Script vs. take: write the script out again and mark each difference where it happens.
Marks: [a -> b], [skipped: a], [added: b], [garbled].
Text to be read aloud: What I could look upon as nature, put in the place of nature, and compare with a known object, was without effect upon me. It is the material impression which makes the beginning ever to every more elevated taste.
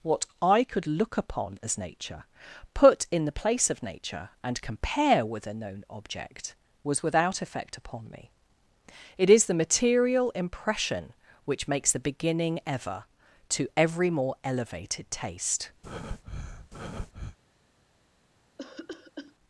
What I could look upon as nature, put in the place of nature, and compare with a known object, was without effect upon me. It is the material impression which makes the beginning ever to every more elevated taste.